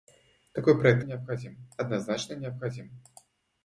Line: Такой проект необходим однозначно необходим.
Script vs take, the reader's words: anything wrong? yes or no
no